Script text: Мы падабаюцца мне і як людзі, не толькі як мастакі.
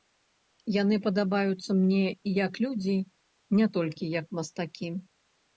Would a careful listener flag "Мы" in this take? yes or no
yes